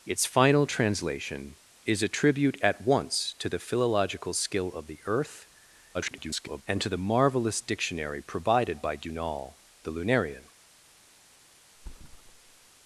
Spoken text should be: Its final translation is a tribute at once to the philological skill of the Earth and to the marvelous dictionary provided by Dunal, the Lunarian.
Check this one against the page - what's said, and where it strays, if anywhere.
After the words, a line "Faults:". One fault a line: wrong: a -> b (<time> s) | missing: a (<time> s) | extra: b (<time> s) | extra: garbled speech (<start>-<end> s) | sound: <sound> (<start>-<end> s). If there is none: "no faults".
Its final translation is a tribute at once to the philological skill of the Earth [garbled] and to the marvelous dictionary provided by Dunal, the Lunarian.
Faults:
extra: garbled speech (5.9-6.6 s)
sound: thud (11.7-12.7 s)